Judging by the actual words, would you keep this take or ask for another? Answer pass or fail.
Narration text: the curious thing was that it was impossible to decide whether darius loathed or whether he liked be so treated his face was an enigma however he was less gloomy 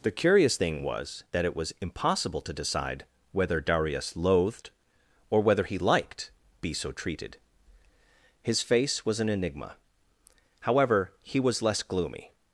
pass